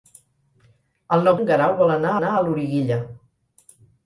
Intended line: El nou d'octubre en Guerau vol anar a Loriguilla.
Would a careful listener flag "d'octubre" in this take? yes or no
yes